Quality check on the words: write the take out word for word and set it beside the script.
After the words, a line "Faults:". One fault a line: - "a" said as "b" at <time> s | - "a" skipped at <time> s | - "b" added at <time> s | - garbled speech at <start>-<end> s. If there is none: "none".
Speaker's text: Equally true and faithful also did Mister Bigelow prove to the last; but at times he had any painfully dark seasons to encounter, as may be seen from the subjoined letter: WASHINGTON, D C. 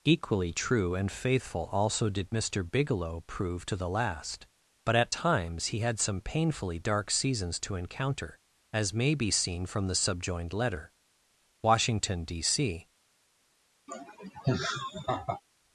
Equally true and faithful also did Mister Bigelow prove to the last; but at times he had some painfully dark seasons to encounter, as may be seen from the subjoined letter: WASHINGTON, D C.
Faults:
- "any" said as "some" at 6.0 s